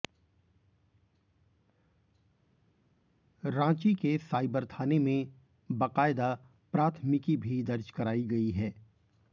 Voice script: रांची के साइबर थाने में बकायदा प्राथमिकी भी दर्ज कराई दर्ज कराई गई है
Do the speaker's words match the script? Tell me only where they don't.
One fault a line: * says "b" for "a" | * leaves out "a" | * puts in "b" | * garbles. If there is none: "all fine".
* leaves out "दर्ज कराई"